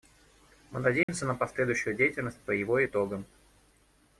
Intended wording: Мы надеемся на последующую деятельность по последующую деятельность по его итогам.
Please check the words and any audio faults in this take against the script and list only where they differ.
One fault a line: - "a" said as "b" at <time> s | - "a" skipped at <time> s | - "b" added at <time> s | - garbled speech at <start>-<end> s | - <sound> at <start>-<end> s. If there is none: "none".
- dropout at 1.0-1.1 s
- "последующую деятельность по" skipped at 2.5 s